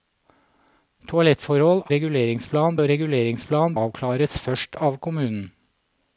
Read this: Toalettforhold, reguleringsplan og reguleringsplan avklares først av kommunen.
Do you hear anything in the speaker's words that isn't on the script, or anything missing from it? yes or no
no